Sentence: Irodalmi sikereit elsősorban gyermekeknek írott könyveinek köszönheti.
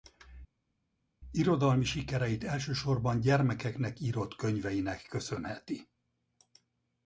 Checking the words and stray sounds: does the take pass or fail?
pass